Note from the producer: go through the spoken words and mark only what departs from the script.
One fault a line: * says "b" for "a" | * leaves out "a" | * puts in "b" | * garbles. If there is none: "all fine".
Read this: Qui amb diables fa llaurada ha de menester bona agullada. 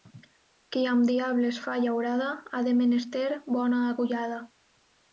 all fine